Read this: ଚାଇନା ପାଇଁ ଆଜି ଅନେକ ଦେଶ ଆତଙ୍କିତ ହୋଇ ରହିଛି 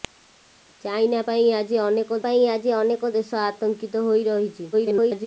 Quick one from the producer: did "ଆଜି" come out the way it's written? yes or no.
yes